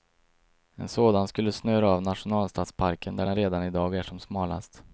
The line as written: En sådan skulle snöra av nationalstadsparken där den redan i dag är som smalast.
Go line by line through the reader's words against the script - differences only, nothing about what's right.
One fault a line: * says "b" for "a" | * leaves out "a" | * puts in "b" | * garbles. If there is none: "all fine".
all fine